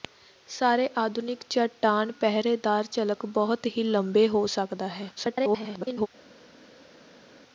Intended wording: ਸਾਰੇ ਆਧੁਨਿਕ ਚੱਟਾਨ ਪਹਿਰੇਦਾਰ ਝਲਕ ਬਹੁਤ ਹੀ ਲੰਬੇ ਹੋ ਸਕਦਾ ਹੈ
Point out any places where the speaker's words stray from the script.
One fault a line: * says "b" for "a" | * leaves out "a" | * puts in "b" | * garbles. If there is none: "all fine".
* garbles